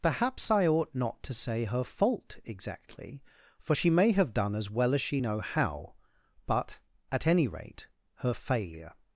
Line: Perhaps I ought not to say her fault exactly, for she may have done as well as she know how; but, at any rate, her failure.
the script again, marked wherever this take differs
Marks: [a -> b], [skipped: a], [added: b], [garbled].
Perhaps I ought not to say her fault exactly, for she may have done as well as she know how; but, at any rate, her failure.